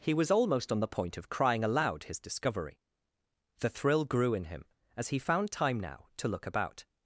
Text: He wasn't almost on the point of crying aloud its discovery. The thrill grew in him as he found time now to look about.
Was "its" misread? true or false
true